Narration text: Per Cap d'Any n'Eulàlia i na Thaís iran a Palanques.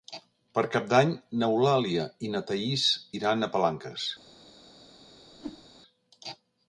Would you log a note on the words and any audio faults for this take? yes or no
yes